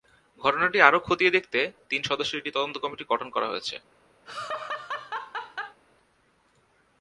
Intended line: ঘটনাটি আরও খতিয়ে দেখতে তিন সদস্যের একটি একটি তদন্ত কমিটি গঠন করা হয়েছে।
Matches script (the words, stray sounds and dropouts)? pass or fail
fail